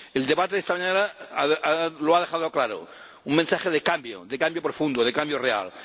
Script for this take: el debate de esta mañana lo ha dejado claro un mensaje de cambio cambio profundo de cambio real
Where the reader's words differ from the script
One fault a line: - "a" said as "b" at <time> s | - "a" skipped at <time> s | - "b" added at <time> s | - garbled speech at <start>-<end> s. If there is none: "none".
- "de" added at 4.2 s